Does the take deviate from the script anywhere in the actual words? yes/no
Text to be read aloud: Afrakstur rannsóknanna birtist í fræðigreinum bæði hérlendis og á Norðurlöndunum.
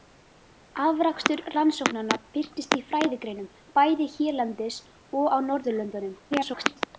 yes